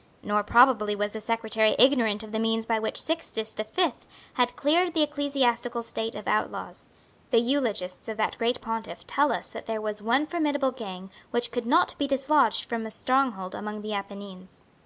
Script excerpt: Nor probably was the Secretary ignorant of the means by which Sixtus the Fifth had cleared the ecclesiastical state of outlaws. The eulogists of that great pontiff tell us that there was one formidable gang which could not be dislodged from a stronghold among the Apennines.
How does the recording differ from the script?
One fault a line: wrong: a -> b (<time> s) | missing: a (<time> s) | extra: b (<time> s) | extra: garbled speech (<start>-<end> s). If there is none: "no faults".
no faults